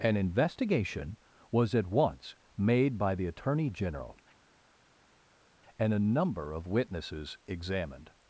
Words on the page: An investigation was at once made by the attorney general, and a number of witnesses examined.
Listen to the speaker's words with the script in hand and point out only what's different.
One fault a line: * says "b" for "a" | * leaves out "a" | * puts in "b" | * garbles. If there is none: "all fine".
all fine